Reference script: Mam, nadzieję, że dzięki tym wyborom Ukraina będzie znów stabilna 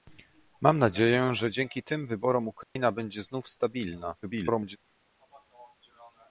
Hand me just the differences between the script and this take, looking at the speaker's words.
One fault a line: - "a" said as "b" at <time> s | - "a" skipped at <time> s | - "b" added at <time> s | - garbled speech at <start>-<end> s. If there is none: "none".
- garbled speech at 4.2-4.8 s